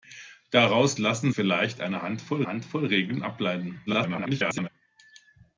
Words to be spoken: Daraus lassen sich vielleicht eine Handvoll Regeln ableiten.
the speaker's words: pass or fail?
fail